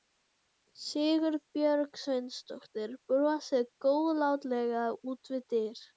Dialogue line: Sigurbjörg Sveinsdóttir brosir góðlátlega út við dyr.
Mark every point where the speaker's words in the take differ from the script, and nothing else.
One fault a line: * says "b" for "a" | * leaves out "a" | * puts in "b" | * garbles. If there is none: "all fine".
all fine